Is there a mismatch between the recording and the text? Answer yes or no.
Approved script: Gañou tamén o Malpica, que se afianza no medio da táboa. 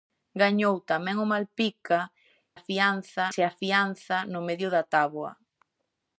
yes